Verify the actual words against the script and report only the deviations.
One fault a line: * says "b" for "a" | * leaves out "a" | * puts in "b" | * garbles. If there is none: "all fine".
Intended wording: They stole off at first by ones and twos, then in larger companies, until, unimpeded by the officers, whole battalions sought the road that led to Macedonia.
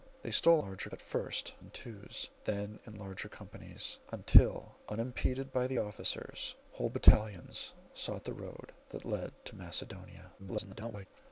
* says "larger" for "off"
* leaves out "by ones"
* garbles